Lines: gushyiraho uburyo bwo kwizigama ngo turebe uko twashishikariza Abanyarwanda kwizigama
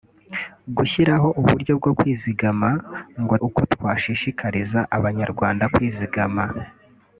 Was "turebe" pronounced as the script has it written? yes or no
no